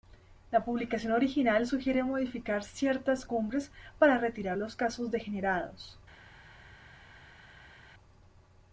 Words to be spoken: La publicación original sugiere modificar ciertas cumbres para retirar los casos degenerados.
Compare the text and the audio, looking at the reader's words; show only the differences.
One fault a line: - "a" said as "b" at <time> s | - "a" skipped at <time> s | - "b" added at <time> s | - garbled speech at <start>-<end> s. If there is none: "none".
none